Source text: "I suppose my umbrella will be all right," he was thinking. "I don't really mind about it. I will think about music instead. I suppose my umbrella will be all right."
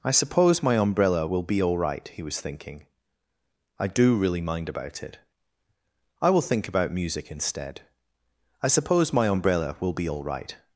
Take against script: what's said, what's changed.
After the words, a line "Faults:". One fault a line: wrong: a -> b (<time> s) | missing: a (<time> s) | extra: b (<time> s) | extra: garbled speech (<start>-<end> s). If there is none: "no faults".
"I suppose my umbrella will be all right," he was thinking. "I do really mind about it. I will think about music instead. I suppose my umbrella will be all right."
Faults:
wrong: don't -> do (3.9 s)